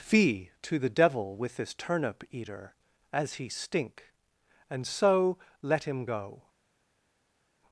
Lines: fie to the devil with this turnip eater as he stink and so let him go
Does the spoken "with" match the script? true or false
true